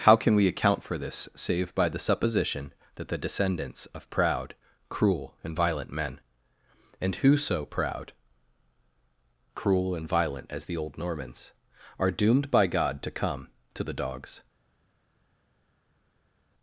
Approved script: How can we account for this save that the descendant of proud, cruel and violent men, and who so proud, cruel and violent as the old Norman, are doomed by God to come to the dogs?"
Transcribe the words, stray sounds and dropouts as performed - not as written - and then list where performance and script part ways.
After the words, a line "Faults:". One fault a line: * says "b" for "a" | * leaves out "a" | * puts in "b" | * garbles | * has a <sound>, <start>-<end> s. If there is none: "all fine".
How can we account for this save by the supposition that the descendants of proud, cruel and violent men, and who so proud, cruel and violent as the old Normans, are doomed by God to come to the dogs?"
Faults:
* puts in "by the supposition"
* says "descendants" for "descendant"
* says "Normans" for "Norman"